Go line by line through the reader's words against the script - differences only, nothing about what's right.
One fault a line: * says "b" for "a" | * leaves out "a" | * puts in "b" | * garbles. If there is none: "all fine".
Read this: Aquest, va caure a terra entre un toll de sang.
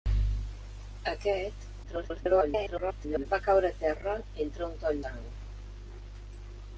* garbles
* leaves out "de"